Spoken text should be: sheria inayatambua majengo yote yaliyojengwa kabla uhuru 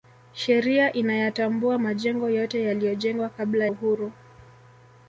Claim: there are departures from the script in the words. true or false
false